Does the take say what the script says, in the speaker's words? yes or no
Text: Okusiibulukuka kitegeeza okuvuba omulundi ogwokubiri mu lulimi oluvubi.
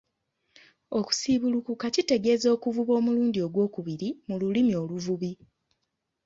yes